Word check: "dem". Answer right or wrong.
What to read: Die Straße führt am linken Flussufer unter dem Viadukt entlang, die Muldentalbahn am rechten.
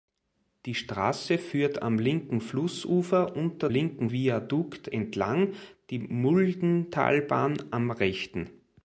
wrong